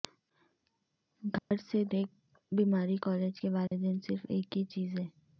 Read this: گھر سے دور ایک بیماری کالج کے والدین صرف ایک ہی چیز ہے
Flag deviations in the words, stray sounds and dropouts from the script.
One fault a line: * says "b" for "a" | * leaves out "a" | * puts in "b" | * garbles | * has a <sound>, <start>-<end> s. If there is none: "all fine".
* has a dropout, 1.4-1.5 s
* leaves out "دور"
* has a dropout, 3.7-3.7 s